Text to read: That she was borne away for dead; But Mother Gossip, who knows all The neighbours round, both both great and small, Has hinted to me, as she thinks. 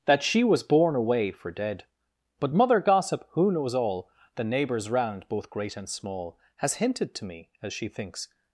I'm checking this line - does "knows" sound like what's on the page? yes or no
yes